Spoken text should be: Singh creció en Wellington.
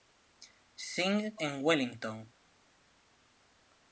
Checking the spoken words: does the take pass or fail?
fail